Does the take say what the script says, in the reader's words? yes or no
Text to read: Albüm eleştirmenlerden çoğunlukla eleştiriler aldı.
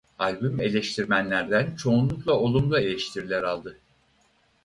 no